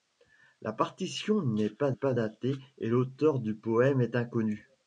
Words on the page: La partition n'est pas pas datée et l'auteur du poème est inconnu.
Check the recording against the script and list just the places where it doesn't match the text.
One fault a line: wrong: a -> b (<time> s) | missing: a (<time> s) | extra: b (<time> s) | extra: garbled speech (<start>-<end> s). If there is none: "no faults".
no faults